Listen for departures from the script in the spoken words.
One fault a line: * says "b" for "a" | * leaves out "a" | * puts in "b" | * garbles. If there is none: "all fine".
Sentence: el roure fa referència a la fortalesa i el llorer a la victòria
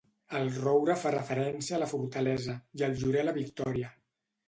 all fine